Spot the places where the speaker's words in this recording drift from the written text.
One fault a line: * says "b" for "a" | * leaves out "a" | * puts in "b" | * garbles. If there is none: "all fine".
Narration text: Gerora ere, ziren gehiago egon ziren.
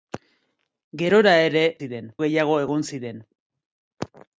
all fine